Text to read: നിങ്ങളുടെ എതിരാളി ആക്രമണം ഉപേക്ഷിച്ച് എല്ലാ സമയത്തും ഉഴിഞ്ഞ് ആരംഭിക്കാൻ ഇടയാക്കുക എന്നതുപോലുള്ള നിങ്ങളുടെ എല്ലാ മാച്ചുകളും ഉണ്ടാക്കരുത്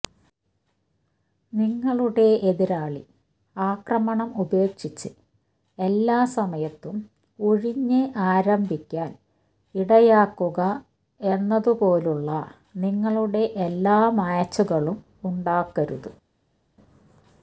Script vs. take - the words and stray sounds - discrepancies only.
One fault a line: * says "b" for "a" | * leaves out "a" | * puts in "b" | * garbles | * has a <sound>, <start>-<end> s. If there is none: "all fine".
all fine